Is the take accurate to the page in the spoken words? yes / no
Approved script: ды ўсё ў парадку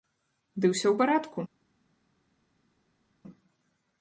yes